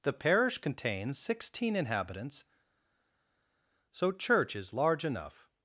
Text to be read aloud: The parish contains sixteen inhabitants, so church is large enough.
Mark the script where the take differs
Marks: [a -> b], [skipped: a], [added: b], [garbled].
The parish contains sixteen inhabitants, so church is large enough.